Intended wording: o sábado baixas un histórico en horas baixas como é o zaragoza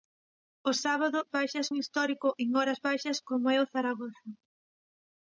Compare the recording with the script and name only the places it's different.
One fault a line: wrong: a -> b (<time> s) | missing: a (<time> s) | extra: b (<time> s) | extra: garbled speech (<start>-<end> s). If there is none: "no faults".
no faults